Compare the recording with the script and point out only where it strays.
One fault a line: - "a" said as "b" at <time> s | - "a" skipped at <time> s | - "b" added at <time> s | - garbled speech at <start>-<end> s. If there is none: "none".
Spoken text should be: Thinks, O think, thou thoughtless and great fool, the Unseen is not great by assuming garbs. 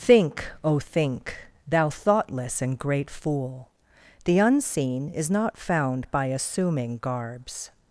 - "Thinks" said as "Think" at 0.0 s
- "great" said as "found" at 5.6 s